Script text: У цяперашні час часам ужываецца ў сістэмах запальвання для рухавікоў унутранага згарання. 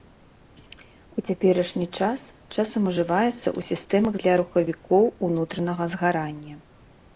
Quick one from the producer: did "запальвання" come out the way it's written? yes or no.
no